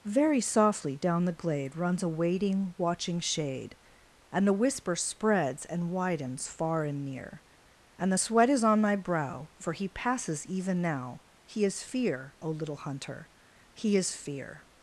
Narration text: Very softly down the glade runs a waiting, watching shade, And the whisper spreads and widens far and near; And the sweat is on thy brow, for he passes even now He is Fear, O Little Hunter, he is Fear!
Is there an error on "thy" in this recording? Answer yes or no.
yes